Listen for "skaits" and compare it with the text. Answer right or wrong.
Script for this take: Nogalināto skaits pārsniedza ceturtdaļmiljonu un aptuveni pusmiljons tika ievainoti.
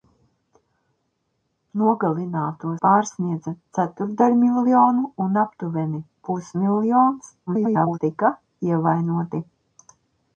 wrong